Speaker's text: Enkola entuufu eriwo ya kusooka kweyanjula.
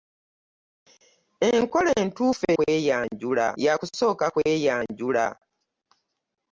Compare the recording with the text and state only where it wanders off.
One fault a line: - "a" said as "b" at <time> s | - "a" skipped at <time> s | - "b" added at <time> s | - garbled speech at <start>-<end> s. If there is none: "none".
- "eriwo" said as "kweyanjula" at 2.6 s